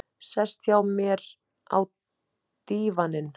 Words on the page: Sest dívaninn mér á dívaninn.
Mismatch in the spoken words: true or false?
true